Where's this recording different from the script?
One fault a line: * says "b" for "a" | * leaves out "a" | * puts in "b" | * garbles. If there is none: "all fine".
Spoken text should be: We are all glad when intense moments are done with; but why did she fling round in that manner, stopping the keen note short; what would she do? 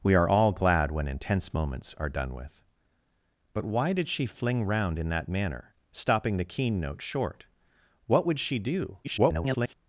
* garbles